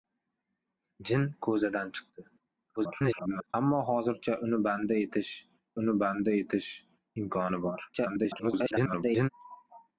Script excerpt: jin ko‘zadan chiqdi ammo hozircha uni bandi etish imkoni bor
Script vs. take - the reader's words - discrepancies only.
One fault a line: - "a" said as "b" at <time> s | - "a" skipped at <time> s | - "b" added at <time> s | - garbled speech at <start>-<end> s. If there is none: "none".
- garbled speech at 2.8-3.5 s
- "uni bandi etish" added at 5.8 s
- garbled speech at 7.9-9.3 s